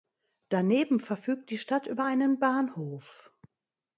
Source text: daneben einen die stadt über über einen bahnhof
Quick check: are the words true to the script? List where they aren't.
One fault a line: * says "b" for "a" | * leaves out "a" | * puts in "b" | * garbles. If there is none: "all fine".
* says "verfügt" for "einen"
* leaves out "über"